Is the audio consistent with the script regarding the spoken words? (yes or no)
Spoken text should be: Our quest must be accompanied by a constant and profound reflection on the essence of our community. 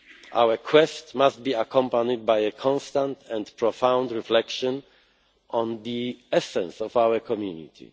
yes